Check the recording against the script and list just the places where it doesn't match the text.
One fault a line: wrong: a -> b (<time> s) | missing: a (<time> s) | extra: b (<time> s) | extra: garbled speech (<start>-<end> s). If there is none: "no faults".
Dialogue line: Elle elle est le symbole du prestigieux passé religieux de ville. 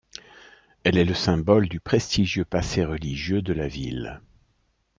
missing: elle (1.0 s)
extra: la (3.5 s)